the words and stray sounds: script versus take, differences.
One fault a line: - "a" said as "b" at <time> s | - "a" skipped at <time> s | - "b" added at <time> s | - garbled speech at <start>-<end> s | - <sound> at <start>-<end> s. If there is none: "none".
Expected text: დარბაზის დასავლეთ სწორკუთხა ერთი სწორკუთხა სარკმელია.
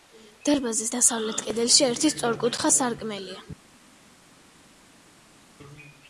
- "სწორკუთხა" said as "კედელში" at 1.5 s